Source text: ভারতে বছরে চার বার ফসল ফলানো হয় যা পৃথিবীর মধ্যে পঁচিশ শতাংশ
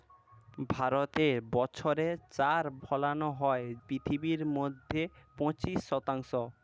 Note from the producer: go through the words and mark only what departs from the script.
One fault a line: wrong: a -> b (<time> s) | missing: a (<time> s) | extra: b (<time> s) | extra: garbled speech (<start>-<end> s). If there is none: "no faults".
missing: বার ফসল (2.6 s)
missing: যা (3.6 s)